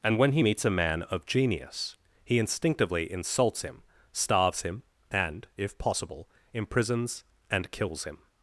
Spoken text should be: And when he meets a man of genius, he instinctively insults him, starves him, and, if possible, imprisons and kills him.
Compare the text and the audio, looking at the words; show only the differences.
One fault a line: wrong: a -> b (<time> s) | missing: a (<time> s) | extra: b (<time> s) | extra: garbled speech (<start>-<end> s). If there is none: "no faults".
no faults